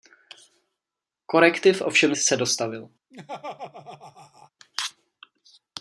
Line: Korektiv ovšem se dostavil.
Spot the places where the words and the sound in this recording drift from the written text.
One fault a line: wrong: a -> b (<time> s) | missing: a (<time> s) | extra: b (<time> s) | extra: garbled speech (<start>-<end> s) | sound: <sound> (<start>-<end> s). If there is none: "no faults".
sound: laugh (3.1-4.5 s)